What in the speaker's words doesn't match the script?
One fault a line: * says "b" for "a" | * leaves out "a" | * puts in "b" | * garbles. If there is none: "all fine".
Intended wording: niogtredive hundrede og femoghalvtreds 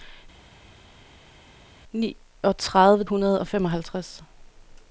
all fine